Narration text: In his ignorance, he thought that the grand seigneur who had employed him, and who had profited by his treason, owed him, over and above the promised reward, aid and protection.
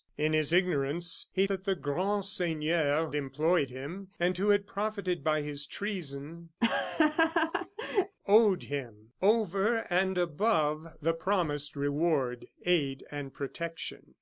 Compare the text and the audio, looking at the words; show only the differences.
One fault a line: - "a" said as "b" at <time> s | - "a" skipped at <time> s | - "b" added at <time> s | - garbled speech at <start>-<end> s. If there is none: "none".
- "thought" skipped at 1.4 s
- "who had" skipped at 3.1 s